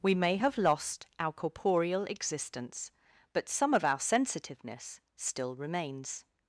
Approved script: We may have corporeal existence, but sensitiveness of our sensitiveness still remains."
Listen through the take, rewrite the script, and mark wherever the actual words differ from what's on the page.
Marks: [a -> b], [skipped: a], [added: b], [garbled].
We may have [added: lost our] corporeal existence, but [sensitiveness -> some] of our sensitiveness still remains."